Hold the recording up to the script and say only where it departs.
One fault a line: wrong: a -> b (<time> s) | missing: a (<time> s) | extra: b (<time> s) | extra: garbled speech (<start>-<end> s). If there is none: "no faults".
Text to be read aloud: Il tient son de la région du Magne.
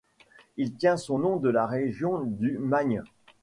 extra: nom (1.2 s)